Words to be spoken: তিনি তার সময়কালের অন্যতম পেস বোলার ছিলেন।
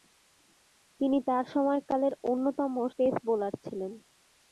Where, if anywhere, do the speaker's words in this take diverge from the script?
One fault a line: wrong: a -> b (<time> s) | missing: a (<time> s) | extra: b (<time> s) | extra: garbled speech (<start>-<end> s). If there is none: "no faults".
no faults